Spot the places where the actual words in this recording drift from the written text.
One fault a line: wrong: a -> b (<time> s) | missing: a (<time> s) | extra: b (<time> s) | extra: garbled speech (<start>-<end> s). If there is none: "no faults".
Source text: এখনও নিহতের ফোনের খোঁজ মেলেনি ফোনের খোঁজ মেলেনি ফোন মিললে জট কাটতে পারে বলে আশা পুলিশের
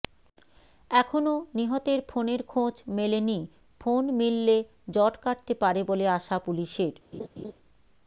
missing: ফোনের খোঁজ মেলেনি (3.4 s)